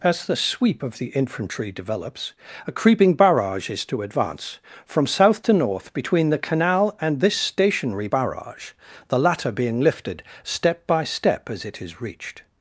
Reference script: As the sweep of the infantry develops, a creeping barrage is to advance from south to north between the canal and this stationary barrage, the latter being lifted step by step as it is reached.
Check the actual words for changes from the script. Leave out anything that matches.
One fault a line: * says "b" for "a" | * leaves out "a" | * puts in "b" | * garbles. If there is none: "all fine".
all fine